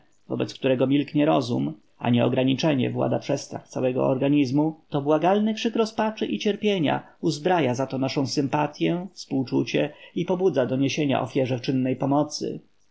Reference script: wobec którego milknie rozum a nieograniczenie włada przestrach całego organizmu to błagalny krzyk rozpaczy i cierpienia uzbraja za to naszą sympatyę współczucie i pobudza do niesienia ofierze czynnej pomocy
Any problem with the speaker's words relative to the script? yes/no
no